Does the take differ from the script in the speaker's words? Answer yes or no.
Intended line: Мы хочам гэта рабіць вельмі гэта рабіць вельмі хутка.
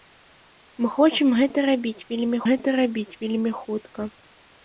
no